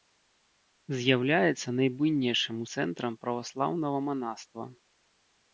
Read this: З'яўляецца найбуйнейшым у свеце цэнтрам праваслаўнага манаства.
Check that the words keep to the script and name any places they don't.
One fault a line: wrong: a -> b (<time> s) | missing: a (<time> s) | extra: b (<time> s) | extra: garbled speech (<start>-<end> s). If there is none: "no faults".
missing: свеце (2.6 s)